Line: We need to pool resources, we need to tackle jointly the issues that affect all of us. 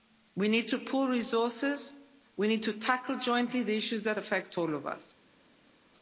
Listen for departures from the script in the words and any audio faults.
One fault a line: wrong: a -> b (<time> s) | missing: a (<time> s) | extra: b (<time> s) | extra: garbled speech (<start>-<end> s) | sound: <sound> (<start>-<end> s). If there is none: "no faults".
no faults